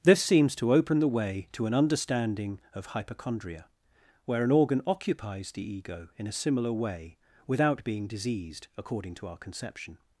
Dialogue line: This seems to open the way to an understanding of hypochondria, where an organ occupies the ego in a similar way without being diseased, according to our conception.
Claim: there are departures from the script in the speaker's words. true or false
false